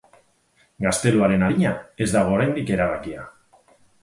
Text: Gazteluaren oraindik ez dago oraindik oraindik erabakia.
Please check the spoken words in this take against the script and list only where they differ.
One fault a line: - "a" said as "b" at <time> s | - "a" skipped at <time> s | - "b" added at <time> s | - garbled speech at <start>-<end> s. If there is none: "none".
- "oraindik" said as "adina" at 1.5 s
- "oraindik" skipped at 2.7 s